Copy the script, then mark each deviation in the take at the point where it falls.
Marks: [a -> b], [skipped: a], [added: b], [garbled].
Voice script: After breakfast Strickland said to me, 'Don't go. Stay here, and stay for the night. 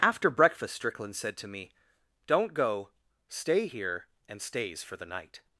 After breakfast Strickland said to me, 'Don't go. Stay here, and [stay -> stays] for the night.